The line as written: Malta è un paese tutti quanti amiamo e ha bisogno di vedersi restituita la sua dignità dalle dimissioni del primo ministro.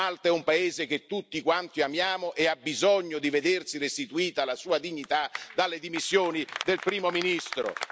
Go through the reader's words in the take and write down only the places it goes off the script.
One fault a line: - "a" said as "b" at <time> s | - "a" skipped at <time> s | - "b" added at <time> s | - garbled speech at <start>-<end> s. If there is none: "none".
- "che" added at 0.9 s